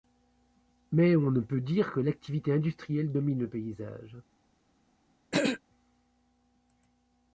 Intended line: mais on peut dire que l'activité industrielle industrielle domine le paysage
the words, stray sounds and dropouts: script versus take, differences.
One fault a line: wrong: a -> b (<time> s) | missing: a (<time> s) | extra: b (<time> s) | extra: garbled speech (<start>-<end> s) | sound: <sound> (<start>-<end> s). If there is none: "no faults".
extra: ne (1.3 s)
missing: industrielle (3.1 s)
sound: throat clearing (5.3-5.6 s)